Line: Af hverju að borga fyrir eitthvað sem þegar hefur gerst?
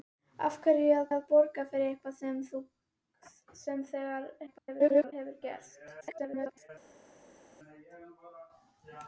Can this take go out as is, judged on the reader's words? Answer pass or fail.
fail